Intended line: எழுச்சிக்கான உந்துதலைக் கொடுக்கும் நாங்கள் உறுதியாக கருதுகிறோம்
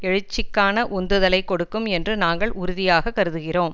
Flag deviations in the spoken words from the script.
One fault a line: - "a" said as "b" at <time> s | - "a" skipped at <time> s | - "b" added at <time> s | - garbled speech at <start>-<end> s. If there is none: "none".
- "என்று" added at 1.9 s